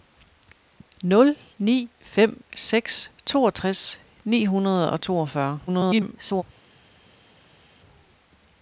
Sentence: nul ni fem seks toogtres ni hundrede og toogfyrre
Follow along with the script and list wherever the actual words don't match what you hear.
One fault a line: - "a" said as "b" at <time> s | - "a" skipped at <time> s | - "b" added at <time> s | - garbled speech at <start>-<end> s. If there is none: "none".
- garbled speech at 5.7-6.4 s